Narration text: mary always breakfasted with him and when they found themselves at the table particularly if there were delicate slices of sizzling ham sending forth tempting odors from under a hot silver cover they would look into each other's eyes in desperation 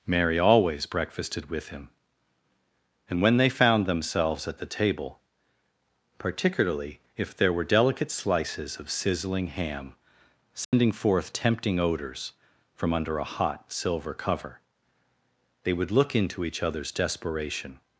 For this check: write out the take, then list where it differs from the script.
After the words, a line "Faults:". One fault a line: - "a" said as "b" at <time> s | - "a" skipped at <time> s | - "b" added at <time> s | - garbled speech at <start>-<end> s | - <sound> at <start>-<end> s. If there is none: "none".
mary always breakfasted with him and when they found themselves at the table particularly if there were delicate slices of sizzling ham sending forth tempting odors from under a hot silver cover they would look into each other's desperation
Faults:
- dropout at 10.6-10.7 s
- "eyes in" skipped at 16.9 s